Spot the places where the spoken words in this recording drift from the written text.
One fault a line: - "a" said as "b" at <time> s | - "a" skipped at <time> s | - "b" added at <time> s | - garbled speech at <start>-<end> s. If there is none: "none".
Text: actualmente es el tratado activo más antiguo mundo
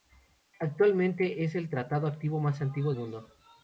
none